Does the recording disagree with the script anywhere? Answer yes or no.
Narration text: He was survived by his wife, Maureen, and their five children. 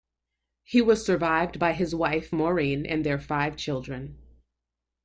no